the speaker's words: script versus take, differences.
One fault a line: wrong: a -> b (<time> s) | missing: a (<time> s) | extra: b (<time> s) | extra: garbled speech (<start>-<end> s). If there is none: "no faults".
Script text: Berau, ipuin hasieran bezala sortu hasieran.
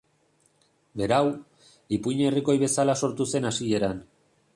wrong: hasieran -> herrikoi (2.3 s)
extra: zen (3.3 s)